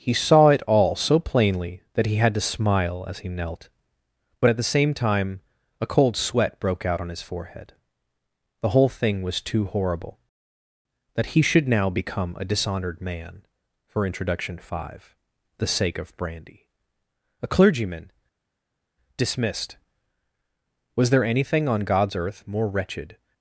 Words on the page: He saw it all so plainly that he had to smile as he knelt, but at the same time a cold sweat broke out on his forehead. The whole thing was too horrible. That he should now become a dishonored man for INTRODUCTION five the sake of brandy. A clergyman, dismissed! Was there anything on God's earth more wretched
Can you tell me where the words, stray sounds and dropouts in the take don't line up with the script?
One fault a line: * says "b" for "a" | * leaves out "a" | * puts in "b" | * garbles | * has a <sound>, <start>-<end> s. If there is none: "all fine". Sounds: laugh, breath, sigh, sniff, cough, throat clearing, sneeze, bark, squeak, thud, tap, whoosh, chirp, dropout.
all fine